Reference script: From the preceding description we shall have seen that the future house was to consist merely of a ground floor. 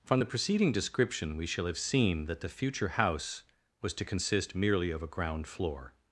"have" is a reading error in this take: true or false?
false